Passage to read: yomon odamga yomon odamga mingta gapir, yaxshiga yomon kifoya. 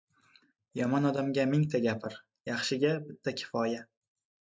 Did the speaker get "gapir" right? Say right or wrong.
right